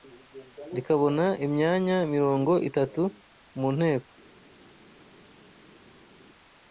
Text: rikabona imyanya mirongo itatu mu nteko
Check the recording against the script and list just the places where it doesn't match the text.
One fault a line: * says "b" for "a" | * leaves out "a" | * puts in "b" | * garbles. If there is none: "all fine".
all fine